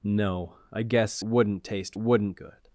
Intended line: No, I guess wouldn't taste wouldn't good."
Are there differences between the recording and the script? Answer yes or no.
no